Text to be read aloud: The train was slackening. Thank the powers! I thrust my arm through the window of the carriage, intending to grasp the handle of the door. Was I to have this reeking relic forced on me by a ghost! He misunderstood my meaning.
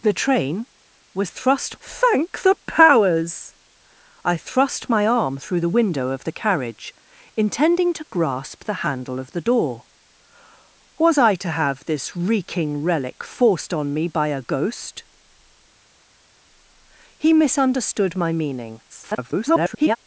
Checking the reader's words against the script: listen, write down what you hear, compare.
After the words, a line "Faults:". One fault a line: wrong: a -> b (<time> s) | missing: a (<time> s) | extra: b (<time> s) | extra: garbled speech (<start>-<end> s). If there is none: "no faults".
The train was thrust. Thank the powers! I thrust my arm through the window of the carriage, intending to grasp the handle of the door. Was I to have this reeking relic forced on me by a ghost! He misunderstood my meaning. [garbled]
Faults:
wrong: slackening -> thrust (1.3 s)
extra: garbled speech (18.9-20.0 s)